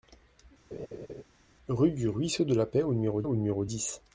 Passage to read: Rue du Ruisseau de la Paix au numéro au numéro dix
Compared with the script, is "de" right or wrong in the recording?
right